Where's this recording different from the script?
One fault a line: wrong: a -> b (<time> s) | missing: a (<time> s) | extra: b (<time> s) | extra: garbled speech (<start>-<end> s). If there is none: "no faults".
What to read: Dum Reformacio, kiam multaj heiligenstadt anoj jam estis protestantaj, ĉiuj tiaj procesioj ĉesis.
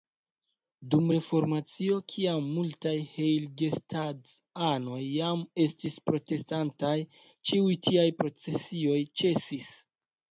no faults